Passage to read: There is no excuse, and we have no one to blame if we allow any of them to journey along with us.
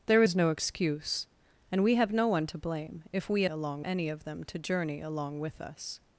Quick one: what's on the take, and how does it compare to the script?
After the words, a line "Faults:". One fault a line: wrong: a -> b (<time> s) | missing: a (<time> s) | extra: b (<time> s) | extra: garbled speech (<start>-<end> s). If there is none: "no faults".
There is no excuse, and we have no one to blame if we along any of them to journey along with us.
Faults:
wrong: allow -> along (3.5 s)